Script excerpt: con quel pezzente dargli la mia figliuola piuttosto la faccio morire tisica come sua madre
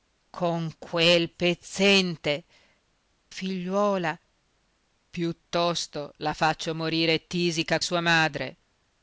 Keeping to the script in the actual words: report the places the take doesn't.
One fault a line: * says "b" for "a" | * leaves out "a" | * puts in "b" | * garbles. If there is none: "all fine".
* leaves out "dargli la mia"
* leaves out "come"